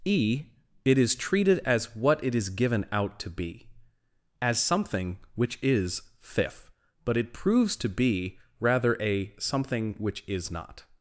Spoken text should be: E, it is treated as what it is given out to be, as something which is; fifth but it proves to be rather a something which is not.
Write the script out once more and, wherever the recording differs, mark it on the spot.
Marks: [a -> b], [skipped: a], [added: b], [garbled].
E, it is treated as what it is given out to be, as something which is; fifth but it proves to be rather a something which is not.